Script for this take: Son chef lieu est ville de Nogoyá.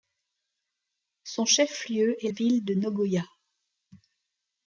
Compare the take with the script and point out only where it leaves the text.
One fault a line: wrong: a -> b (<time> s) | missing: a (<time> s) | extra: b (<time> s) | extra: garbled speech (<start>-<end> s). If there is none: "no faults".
no faults